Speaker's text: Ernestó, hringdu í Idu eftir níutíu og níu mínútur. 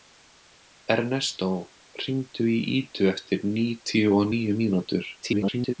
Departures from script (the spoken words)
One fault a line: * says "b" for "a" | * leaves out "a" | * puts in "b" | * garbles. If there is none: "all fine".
* garbles